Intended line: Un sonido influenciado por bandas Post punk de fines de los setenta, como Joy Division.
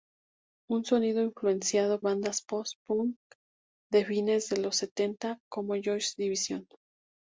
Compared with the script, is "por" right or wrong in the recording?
wrong